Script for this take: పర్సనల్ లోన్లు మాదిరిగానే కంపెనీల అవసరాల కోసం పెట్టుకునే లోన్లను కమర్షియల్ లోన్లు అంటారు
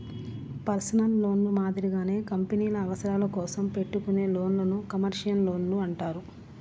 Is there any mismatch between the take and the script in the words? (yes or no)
no